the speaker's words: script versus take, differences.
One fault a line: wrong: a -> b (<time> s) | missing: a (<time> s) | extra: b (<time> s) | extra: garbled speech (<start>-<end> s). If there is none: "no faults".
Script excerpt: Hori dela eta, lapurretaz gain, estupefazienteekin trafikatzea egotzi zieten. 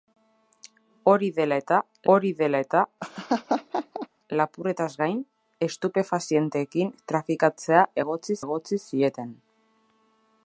extra: hori dela eta (2.1 s)
extra: egotzi (8.5 s)